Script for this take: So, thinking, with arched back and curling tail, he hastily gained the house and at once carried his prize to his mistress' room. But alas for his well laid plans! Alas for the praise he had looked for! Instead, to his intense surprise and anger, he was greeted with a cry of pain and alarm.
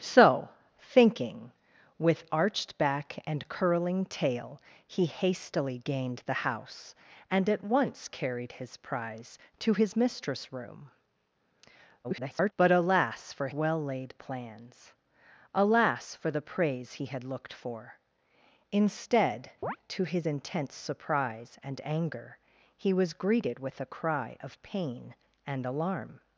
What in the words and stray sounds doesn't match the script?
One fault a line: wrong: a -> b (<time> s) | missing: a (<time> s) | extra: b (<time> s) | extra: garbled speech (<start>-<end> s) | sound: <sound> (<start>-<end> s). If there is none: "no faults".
extra: garbled speech (12.0-12.5 s)
missing: his (13.5 s)
sound: chirp (19.6-19.8 s)